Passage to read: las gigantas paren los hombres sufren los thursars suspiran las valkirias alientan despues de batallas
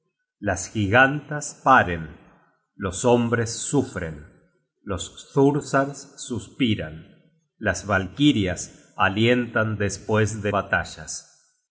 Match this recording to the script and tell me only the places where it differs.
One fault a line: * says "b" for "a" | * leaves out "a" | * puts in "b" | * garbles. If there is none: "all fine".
all fine